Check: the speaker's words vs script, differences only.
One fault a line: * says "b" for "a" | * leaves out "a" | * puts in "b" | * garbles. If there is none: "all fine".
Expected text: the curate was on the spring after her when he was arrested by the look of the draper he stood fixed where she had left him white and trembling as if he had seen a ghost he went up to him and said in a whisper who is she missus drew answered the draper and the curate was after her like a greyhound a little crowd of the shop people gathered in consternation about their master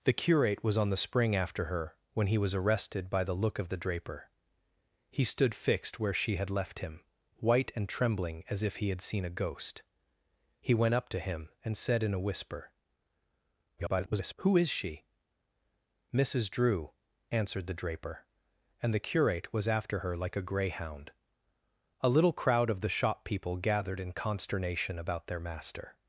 * garbles